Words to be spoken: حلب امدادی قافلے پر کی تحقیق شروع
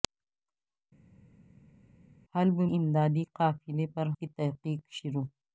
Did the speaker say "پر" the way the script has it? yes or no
yes